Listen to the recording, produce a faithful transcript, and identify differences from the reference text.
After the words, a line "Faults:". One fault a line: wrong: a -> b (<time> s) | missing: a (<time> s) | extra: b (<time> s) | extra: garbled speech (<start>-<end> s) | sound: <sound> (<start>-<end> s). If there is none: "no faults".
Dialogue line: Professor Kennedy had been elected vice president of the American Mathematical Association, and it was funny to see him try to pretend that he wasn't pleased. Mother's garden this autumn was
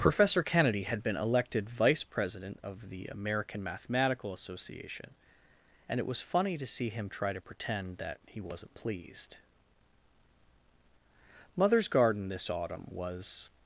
Professor Kennedy had been elected vice president of the American Mathematical Association, and it was funny to see him try to pretend that he wasn't pleased. Mother's garden this autumn was
Faults:
no faults